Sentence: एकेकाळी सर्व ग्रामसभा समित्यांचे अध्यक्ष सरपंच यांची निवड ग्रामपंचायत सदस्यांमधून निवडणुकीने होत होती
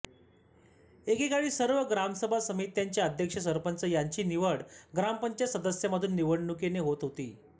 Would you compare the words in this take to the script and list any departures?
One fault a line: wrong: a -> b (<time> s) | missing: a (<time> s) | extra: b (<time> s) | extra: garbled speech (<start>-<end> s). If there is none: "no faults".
no faults